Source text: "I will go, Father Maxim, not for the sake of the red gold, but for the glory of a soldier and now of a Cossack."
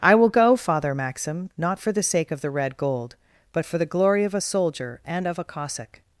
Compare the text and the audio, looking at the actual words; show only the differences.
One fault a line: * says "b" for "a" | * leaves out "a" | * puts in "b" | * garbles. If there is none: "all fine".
* leaves out "now"